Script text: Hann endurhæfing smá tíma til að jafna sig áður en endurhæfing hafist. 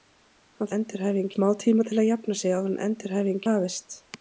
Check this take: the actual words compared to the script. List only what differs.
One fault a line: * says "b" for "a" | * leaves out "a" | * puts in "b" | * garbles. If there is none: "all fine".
all fine